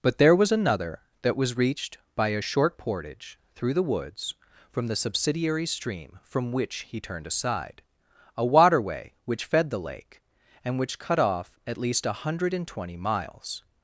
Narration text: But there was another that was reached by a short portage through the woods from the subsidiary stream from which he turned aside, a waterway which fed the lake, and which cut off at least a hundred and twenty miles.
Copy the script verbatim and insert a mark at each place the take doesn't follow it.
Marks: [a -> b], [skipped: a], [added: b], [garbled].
But there was another that was reached by a short portage through the woods from the subsidiary stream from which he turned aside, a waterway which fed the lake, and which cut off at least a hundred and twenty miles.